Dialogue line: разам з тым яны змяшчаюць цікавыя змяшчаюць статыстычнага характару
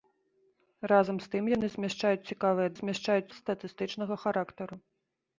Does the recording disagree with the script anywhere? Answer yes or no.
no